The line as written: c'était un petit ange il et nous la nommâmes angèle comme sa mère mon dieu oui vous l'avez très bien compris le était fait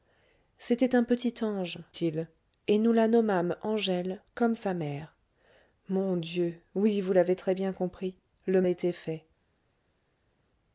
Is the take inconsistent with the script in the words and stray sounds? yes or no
no